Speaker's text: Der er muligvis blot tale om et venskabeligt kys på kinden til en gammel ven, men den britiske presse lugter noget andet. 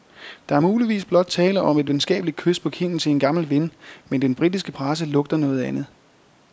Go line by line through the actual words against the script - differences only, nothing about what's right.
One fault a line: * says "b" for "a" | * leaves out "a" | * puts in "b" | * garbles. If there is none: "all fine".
all fine